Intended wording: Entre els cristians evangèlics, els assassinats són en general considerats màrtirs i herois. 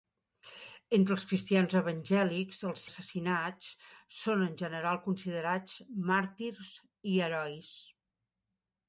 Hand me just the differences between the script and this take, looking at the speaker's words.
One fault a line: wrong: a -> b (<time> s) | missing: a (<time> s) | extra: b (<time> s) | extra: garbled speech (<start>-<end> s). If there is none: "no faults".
no faults